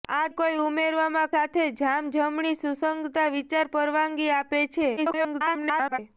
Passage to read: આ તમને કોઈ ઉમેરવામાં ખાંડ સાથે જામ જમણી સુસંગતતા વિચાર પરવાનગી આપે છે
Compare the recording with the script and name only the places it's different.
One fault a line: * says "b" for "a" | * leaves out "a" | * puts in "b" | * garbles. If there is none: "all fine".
* leaves out "તમને"
* leaves out "ખાંડ"
* garbles